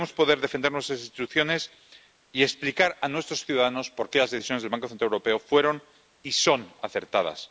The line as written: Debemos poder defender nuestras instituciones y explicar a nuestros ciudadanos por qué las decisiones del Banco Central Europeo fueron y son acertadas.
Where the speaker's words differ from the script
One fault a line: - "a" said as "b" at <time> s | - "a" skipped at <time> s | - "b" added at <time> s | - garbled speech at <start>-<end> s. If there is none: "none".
none